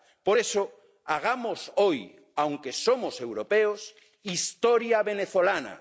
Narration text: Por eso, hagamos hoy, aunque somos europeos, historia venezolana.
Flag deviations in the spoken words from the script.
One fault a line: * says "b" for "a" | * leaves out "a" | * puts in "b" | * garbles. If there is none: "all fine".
all fine